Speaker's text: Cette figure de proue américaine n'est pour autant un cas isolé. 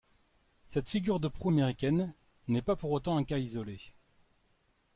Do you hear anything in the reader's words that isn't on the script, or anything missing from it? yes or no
yes